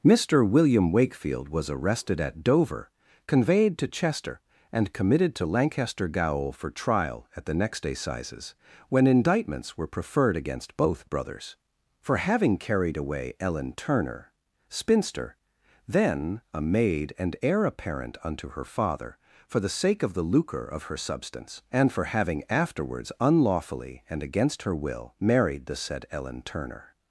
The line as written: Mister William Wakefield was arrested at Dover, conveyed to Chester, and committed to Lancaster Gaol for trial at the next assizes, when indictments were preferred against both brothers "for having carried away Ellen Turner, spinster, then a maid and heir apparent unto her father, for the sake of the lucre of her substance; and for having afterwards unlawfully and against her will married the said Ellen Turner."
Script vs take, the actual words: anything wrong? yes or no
no